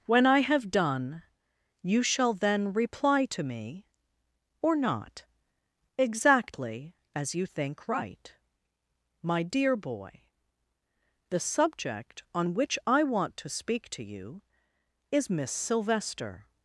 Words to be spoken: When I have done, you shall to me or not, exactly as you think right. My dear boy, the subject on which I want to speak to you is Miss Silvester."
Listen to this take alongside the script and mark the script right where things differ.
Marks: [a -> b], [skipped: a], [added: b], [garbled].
When I have done, you shall [added: then reply] to me or not, exactly as you think right. My dear boy, the subject on which I want to speak to you is Miss Silvester."